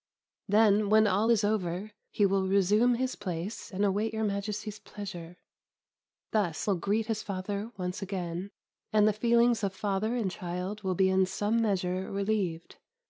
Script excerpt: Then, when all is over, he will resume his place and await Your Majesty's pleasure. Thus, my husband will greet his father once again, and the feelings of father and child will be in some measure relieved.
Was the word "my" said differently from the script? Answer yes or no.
yes